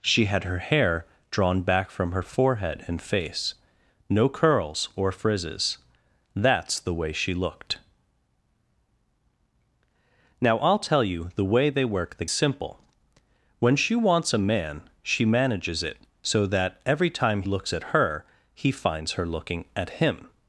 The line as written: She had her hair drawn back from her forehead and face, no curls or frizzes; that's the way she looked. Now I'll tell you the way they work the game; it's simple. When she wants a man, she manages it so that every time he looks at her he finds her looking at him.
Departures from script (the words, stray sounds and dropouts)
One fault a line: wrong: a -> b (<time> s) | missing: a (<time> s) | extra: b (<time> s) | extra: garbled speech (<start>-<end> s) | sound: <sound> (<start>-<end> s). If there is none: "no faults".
missing: game it's (12.2 s)
missing: he (17.4 s)